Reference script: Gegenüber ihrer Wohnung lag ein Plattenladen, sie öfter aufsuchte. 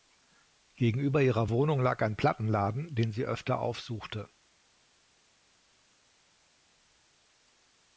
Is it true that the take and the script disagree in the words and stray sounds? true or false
true